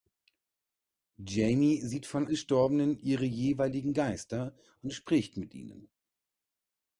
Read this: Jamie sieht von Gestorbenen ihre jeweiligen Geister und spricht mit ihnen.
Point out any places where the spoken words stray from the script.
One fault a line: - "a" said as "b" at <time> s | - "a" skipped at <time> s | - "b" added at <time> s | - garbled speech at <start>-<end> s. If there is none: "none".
none